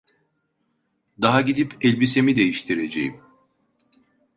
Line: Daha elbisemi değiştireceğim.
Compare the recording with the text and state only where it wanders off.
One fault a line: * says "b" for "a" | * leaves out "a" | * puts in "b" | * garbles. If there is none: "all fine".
* puts in "gidip"